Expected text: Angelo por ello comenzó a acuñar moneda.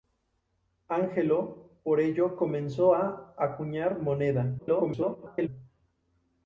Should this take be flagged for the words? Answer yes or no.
yes